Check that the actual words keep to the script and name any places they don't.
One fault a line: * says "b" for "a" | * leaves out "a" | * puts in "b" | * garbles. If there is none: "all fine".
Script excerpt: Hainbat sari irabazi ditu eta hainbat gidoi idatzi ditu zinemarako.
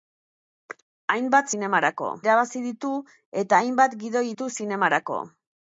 * says "zinemarako" for "sari"
* leaves out "idatzi"